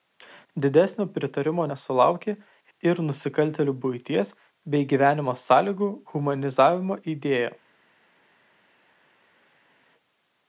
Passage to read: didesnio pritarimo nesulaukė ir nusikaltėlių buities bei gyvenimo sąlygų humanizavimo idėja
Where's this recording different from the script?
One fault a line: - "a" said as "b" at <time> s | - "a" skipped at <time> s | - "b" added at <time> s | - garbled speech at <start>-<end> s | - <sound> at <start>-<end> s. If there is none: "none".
none